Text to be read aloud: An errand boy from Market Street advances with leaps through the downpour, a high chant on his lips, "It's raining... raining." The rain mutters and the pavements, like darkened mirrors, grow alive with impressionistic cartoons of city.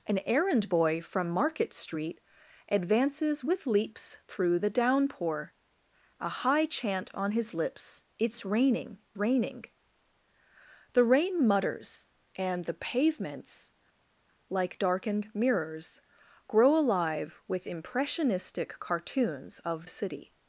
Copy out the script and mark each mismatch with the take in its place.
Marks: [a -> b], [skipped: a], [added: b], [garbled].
An errand boy from Market Street advances with leaps through the downpour, a high chant on his lips, "It's raining... raining." The rain mutters and the pavements, like darkened mirrors, grow alive with impressionistic cartoons of city.